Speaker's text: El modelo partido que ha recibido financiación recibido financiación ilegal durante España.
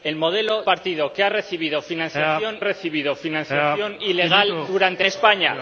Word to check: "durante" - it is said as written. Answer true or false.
true